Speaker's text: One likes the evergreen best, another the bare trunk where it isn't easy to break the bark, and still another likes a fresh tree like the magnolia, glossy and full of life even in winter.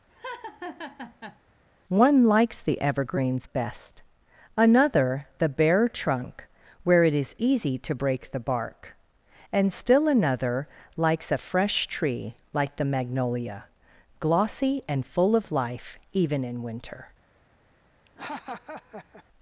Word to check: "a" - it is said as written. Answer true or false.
true